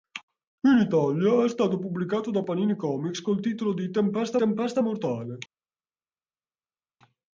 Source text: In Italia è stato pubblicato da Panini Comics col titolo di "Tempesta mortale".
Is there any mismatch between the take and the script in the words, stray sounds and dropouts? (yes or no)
yes